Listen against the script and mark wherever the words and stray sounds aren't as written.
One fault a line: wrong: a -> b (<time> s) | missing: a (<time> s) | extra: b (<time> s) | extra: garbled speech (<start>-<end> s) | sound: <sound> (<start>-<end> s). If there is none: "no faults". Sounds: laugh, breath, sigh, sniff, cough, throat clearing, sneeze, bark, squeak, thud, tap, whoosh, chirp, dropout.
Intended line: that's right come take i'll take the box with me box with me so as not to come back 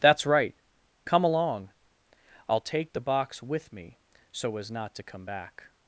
wrong: take -> along (1.2 s)
missing: box with me (4.0 s)